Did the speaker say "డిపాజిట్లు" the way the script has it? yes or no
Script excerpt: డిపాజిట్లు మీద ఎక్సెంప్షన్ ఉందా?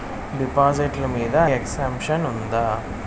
yes